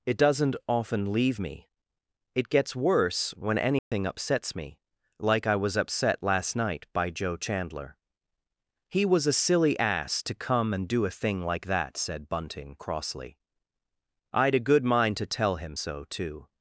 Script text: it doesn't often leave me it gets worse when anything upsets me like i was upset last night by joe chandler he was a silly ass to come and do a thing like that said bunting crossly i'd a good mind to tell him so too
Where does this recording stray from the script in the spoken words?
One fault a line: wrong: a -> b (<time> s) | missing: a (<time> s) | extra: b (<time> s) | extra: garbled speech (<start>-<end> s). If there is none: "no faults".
no faults